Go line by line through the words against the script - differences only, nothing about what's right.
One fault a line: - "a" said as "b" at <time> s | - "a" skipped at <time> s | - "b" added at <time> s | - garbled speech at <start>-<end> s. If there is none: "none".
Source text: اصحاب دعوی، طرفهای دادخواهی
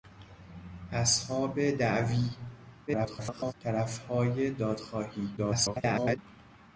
- garbled speech at 2.9-3.5 s
- garbled speech at 5.4-6.2 s